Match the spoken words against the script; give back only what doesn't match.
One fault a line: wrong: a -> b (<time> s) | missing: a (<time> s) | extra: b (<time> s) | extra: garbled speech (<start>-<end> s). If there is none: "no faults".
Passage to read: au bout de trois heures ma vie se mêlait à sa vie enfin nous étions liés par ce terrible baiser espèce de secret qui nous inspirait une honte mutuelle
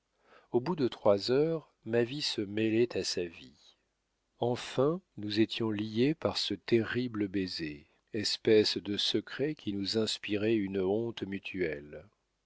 no faults